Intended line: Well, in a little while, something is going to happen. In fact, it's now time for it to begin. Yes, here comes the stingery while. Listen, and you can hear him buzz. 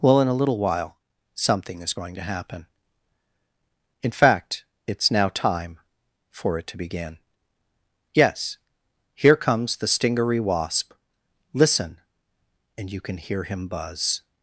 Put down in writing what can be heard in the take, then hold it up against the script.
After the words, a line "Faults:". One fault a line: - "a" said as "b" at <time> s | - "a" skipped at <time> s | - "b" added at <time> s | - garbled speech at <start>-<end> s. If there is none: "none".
Well, in a little while, something is going to happen. In fact, it's now time for it to begin. Yes, here comes the stingery wasp. Listen, and you can hear him buzz.
Faults:
- "while" said as "wasp" at 10.4 s